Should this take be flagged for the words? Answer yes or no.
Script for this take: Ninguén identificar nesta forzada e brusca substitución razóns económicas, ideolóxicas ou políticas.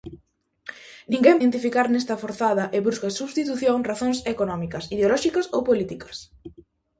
no